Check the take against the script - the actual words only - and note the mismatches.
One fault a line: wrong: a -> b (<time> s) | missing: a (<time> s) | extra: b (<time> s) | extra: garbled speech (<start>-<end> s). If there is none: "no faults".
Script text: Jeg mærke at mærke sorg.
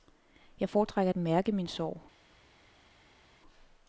wrong: mærke -> foretrækker (0.7 s)
extra: min (1.5 s)